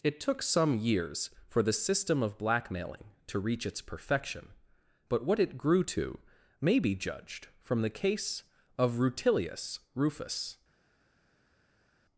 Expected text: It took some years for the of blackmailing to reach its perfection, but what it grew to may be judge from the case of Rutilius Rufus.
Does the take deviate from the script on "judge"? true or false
true